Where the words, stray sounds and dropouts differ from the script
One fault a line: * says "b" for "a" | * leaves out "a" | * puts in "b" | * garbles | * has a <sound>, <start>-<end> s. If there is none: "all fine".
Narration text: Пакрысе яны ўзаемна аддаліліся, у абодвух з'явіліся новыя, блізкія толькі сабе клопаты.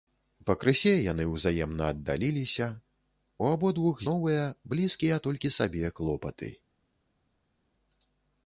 * leaves out "з'явіліся"